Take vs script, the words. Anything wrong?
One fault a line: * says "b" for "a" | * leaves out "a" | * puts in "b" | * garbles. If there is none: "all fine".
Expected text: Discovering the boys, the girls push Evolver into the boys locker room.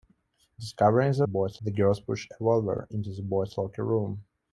all fine